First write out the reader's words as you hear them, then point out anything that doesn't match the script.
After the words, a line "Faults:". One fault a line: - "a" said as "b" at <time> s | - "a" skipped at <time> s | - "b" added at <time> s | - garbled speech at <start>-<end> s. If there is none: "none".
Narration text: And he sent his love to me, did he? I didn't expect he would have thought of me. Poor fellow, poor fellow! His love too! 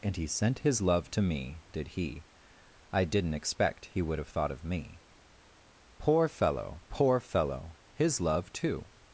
And he sent his love to me, did he? I didn't expect he would have thought of me. Poor fellow, poor fellow! His love too!
Faults:
none